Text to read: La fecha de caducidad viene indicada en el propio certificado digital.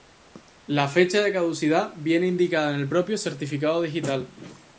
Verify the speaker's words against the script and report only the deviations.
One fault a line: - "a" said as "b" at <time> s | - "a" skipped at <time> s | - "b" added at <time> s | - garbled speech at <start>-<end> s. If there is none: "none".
none